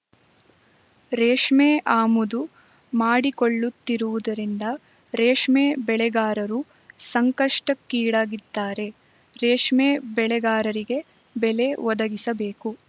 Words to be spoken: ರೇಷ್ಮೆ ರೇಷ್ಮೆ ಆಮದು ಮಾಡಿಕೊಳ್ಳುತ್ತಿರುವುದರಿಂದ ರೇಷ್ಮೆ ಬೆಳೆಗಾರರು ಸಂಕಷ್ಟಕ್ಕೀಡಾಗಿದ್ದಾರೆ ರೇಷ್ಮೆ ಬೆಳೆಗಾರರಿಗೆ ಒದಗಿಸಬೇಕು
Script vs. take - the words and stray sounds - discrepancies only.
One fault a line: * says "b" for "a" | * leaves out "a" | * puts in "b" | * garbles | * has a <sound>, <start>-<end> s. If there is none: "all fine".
* leaves out "ರೇಷ್ಮೆ"
* puts in "ಬೆಲೆ"